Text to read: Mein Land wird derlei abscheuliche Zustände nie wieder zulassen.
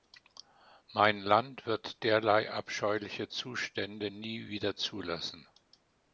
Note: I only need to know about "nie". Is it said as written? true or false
true